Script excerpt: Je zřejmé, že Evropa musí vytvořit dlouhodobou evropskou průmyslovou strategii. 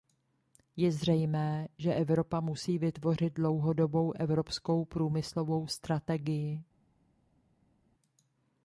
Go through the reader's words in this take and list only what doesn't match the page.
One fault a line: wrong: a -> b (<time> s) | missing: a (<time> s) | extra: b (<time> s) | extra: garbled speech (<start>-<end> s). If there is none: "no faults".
no faults